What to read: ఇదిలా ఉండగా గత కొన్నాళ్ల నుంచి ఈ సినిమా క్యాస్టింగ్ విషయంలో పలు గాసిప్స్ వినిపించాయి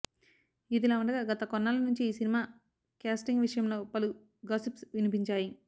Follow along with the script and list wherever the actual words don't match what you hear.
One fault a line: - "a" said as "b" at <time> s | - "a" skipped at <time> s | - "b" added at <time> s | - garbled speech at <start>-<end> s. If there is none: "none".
none